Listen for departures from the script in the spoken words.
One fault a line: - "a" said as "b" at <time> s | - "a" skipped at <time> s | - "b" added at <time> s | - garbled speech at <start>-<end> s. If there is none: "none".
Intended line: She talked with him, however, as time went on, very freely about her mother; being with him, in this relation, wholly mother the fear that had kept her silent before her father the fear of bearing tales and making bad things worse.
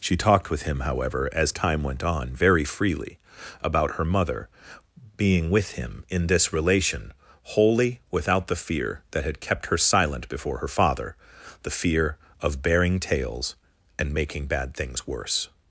- "mother" said as "without" at 8.1 s